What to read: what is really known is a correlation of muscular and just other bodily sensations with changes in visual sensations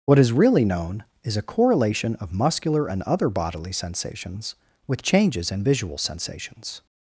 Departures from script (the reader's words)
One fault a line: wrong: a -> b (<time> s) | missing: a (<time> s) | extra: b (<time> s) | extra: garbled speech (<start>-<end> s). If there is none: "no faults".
missing: just (3.0 s)